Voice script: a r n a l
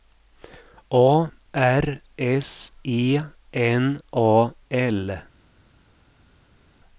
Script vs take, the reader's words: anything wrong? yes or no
yes